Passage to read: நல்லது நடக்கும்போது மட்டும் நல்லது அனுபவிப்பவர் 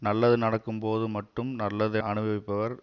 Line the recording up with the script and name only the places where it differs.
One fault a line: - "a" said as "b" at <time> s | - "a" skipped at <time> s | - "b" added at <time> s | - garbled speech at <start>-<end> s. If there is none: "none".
none